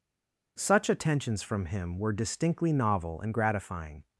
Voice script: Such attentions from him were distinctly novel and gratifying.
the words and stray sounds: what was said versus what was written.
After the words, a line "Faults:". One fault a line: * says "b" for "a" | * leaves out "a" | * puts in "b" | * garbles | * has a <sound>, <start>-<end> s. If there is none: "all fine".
Such attentions from him were distinctly novel and gratifying.
Faults:
all fine